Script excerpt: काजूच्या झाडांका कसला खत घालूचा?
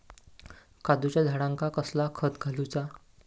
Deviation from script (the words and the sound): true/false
false